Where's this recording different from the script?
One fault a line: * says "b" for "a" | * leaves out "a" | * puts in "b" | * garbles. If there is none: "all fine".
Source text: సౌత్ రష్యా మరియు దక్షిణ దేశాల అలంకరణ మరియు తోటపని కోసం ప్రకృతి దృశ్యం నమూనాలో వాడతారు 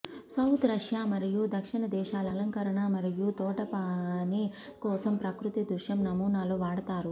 all fine